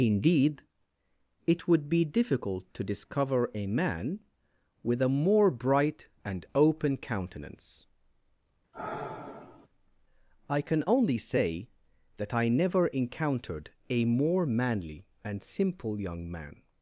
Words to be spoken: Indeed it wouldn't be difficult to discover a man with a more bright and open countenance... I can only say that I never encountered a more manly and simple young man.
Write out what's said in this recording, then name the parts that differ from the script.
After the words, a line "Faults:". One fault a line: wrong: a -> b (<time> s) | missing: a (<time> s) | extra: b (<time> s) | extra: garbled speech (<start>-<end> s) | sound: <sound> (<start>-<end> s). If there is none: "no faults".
Indeed it would be difficult to discover a man with a more bright and open countenance... I can only say that I never encountered a more manly and simple young man.
Faults:
wrong: wouldn't -> would (1.7 s)
sound: sigh (8.7-9.7 s)